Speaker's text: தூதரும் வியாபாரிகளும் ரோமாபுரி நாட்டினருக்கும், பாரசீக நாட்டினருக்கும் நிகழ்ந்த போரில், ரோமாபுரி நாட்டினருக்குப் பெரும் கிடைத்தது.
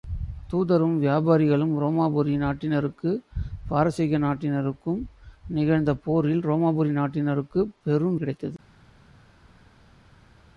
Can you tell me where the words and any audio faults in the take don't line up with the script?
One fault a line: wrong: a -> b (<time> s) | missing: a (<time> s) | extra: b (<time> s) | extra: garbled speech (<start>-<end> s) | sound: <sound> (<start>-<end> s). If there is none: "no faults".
no faults